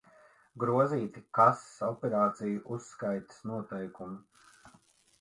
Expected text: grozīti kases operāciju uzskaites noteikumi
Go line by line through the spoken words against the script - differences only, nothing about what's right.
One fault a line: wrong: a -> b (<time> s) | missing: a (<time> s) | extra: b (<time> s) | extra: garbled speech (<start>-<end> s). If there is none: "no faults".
no faults